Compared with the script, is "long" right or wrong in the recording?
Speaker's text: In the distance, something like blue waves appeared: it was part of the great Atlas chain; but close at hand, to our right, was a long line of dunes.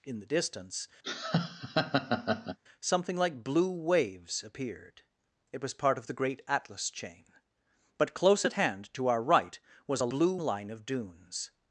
wrong